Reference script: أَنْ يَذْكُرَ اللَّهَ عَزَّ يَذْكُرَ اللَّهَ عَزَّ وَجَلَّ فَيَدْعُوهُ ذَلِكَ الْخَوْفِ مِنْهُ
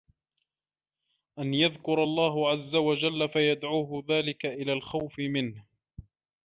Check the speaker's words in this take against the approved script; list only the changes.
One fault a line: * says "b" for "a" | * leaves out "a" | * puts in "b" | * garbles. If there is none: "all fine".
* leaves out "يَذْكُرَ اللَّهَ عَزَّ"
* puts in "إلَى"